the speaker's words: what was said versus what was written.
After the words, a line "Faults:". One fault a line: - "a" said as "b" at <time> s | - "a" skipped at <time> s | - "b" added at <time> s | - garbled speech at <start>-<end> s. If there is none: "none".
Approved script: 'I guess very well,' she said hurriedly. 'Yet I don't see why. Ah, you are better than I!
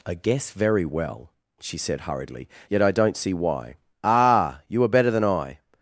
'I guess very well,' she said hurriedly. 'Yet I don't see why. Ah, you are better than I!
Faults:
none